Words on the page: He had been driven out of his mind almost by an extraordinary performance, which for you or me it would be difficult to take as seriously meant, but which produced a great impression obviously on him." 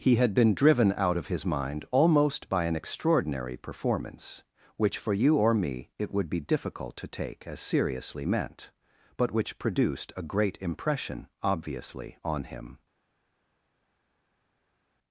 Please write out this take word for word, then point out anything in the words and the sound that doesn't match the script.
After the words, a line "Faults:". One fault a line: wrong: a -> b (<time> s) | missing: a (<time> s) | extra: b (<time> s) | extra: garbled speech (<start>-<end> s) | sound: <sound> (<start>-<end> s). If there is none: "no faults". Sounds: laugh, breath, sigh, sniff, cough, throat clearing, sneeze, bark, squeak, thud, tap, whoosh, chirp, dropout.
He had been driven out of his mind almost by an extraordinary performance, which for you or me it would be difficult to take as seriously meant, but which produced a great impression obviously on him."
Faults:
no faults